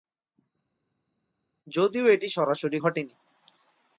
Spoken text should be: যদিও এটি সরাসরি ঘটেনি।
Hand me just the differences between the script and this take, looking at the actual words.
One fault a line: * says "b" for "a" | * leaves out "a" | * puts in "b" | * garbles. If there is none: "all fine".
all fine